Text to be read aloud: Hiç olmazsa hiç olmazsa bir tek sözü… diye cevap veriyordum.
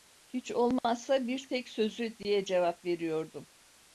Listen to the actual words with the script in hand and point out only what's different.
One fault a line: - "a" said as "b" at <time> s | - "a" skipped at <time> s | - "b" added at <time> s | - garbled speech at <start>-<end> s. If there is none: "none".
- "hiç olmazsa" skipped at 1.3 s